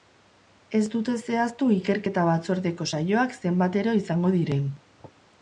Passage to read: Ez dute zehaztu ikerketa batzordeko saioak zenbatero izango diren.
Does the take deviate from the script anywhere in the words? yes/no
no